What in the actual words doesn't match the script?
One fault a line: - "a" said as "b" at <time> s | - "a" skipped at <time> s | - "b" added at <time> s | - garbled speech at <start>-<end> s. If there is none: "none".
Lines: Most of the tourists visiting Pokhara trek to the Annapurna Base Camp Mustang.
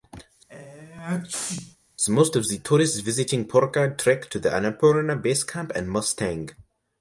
- "and" added at 5.8 s